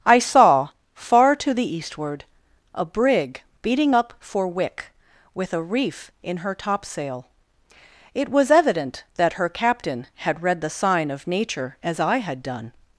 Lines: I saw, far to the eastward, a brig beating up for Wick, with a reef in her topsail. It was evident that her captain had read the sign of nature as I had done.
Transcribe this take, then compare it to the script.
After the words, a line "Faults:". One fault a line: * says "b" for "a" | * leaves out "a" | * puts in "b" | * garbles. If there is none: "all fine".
I saw, far to the eastward, a brig beating up for Wick, with a reef in her topsail. It was evident that her captain had read the sign of nature as I had done.
Faults:
all fine